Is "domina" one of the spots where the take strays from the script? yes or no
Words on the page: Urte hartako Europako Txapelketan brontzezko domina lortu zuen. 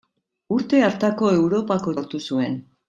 yes